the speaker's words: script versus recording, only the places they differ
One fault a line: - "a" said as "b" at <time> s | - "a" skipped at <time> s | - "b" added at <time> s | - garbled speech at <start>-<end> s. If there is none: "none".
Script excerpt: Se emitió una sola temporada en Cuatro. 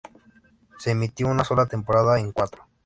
none